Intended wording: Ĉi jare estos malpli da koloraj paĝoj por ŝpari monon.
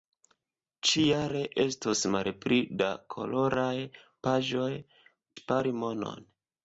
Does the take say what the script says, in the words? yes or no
no